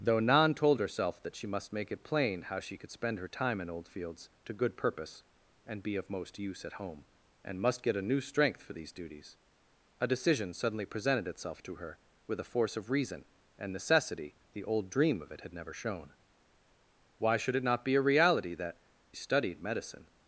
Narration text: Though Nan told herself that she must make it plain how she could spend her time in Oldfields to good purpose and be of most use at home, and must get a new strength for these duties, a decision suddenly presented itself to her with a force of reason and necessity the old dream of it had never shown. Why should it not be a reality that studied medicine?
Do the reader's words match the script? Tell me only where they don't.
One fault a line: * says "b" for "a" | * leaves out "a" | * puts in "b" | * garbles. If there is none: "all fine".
all fine